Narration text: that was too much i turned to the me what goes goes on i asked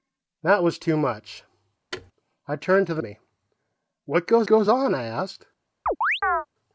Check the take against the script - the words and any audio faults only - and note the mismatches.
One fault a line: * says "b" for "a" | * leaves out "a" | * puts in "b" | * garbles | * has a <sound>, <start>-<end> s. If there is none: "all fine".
* has a thud, 1.9-2.1 s
* has a chirp, 5.9-6.5 s